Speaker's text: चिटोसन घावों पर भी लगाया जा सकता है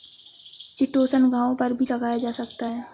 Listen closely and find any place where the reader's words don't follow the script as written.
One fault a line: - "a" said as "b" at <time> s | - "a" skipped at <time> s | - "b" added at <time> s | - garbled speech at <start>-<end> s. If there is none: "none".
none